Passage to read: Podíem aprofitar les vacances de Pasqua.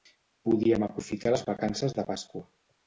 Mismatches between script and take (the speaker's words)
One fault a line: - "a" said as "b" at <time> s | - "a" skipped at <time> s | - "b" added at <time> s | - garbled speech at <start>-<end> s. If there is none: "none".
none